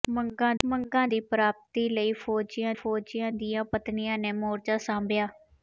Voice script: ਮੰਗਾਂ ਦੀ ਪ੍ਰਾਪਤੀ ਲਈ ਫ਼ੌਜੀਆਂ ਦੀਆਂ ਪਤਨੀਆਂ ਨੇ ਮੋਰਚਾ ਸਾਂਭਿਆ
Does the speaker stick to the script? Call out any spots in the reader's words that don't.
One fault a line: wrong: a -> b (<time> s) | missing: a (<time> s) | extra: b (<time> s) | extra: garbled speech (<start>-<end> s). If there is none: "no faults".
extra: ਮੰਗਾਂ (0.6 s)
extra: ਫ਼ੌਜੀਆਂ (2.7 s)